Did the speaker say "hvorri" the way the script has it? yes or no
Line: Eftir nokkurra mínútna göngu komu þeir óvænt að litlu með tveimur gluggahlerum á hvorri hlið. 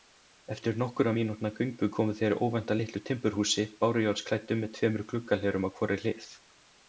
yes